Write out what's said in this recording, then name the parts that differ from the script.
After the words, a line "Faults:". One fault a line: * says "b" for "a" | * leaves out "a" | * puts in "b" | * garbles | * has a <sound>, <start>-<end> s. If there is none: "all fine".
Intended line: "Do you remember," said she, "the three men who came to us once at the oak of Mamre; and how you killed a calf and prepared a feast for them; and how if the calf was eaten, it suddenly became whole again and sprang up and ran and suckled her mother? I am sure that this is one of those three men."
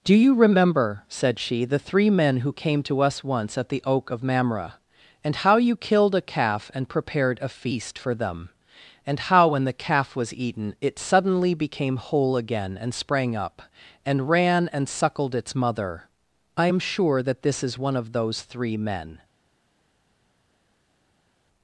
"Do you remember," said she, "the three men who came to us once at the oak of Mamre; and how you killed a calf and prepared a feast for them; and how when the calf was eaten, it suddenly became whole again and sprang up and ran and suckled its mother? I am sure that this is one of those three men."
Faults:
* says "when" for "if"
* says "its" for "her"